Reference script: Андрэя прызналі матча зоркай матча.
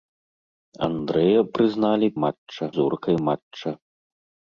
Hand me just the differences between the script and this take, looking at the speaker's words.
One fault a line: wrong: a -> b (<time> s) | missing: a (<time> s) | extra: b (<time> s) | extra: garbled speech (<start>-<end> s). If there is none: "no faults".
no faults